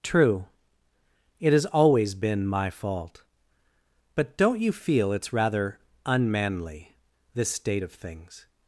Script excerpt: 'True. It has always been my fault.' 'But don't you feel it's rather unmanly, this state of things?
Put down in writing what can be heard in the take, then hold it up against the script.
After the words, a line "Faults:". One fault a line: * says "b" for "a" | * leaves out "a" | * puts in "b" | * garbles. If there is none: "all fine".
'True. It has always been my fault.' 'But don't you feel it's rather unmanly, this state of things?
Faults:
all fine